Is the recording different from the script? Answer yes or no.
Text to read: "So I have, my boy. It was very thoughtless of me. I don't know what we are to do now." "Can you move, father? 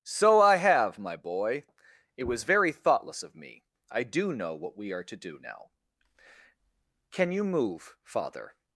yes